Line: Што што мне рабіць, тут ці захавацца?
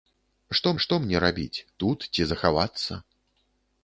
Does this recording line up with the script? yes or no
yes